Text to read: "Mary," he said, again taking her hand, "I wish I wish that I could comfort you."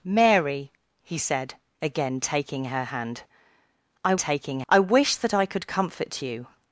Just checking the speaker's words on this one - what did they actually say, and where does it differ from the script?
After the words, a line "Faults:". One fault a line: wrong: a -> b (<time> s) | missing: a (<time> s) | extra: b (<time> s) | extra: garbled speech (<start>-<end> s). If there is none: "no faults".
"Mary," he said, again taking her hand, "I taking I wish that I could comfort you."
Faults:
wrong: wish -> taking (4.1 s)